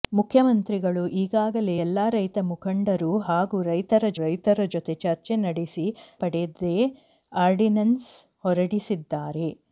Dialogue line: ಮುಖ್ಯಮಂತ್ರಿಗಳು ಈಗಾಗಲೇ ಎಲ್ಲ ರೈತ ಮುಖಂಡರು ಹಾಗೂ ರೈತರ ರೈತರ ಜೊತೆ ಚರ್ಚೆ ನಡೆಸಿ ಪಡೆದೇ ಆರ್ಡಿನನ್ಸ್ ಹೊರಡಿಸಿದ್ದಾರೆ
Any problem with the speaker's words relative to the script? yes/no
no